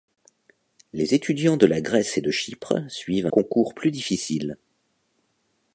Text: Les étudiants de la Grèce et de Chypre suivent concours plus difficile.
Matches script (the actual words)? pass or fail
pass